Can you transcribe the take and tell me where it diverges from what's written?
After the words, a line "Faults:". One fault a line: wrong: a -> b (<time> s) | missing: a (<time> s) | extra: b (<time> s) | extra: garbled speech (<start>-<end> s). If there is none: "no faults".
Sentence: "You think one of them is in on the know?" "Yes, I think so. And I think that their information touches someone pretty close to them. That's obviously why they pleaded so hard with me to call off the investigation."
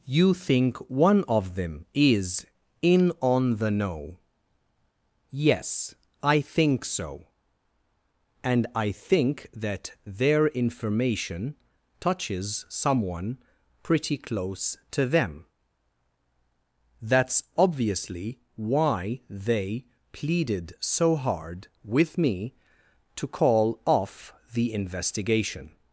"You think one of them is in on the know?" "Yes, I think so. And I think that their information touches someone pretty close to them. That's obviously why they pleaded so hard with me to call off the investigation."
Faults:
no faults